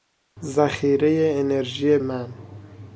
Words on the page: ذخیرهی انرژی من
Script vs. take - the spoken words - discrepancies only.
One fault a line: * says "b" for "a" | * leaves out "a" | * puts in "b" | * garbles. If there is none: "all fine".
all fine